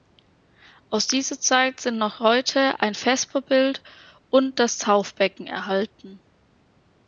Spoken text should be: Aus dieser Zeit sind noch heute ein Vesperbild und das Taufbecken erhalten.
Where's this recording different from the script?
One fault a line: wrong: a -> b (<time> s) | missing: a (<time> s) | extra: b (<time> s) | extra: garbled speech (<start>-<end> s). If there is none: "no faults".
no faults